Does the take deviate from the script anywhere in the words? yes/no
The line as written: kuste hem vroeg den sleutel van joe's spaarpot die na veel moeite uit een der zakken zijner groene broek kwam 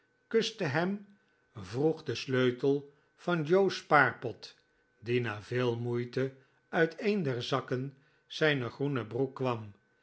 no